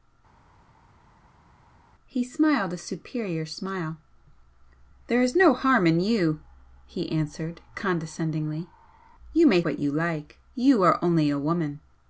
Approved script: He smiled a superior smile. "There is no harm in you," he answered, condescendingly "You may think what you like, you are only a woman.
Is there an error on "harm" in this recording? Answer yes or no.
no